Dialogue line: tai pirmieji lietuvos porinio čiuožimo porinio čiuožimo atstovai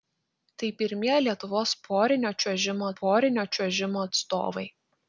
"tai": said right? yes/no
yes